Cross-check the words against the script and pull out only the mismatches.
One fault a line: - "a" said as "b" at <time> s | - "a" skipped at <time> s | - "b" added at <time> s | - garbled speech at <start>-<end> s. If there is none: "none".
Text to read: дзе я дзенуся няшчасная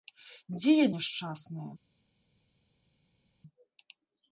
- "дзенуся" skipped at 0.8 s